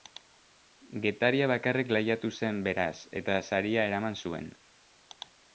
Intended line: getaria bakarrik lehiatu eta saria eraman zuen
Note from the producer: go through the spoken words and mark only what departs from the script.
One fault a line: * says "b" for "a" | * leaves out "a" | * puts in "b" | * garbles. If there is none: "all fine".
* puts in "zen beraz"